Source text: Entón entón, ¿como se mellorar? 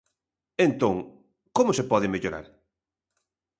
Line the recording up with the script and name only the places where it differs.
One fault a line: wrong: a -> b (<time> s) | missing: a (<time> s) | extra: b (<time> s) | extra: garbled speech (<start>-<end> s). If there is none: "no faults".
missing: entón (0.9 s)
extra: pode (1.9 s)